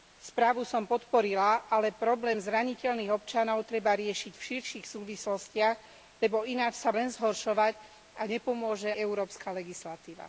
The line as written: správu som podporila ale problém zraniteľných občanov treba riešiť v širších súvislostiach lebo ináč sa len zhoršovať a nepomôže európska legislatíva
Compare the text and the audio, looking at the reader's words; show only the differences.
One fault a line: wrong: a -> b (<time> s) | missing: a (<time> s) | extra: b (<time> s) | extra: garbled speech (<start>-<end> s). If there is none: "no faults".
no faults